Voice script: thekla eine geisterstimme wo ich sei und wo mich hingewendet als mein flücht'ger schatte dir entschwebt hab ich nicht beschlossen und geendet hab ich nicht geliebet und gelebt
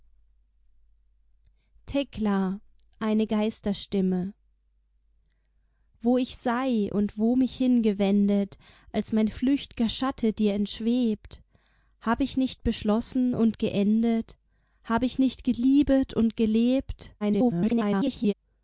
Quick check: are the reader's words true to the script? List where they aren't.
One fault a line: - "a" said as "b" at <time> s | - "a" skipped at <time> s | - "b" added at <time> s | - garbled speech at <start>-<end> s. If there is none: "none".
- garbled speech at 17.2-18.3 s